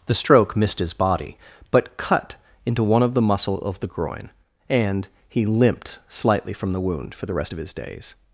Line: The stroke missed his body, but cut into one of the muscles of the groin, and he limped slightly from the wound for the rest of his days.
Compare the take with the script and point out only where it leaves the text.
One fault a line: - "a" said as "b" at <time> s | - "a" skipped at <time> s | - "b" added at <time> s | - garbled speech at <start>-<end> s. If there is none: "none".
- "muscles" said as "muscle" at 3.2 s